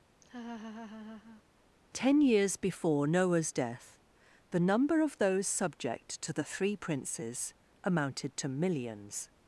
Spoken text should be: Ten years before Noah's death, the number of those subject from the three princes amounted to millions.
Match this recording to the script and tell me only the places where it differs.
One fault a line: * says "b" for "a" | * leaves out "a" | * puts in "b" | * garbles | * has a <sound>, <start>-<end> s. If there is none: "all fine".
* has a laugh, 0.2-1.4 s
* says "to" for "from"